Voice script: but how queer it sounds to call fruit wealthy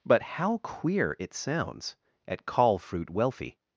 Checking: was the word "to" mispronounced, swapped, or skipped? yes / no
yes